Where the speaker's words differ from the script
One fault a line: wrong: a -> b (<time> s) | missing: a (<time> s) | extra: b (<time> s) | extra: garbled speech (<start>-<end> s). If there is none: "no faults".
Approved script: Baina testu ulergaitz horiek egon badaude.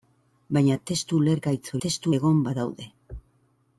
wrong: horiek -> testu (1.9 s)